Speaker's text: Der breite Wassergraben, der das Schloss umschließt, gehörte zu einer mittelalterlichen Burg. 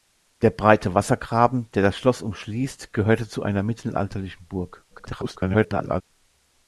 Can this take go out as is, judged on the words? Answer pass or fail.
fail